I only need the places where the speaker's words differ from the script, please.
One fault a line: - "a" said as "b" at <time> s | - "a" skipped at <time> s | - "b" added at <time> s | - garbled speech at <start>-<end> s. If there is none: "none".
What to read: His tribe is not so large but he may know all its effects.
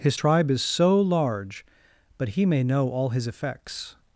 - "not" skipped at 0.6 s
- "its" said as "his" at 3.1 s